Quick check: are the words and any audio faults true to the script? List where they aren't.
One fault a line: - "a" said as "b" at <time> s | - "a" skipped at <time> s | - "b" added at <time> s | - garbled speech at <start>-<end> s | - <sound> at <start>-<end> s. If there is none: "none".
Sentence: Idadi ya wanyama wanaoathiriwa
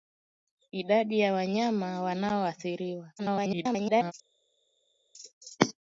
- garbled speech at 3.2-4.1 s